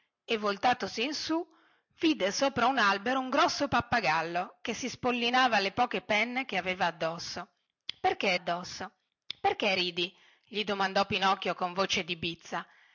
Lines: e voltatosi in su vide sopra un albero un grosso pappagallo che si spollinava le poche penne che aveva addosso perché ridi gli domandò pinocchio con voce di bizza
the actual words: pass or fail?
fail